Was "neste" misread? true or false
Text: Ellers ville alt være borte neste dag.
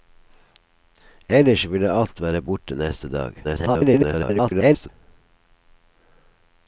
false